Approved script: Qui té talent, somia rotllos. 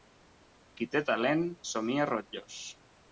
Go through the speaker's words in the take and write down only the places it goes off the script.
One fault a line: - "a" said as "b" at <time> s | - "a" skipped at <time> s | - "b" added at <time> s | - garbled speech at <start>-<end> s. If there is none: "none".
none